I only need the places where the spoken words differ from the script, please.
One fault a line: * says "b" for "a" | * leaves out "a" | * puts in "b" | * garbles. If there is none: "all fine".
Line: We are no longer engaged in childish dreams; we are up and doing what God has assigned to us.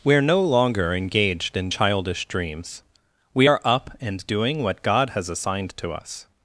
all fine